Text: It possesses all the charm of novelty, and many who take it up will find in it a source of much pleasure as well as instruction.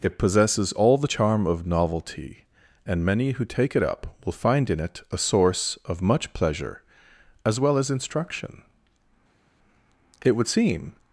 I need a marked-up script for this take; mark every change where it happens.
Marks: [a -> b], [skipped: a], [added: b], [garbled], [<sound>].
It possesses all the charm of novelty, and many who take it up will find in it a source of much pleasure as well as instruction. [added: It would seem]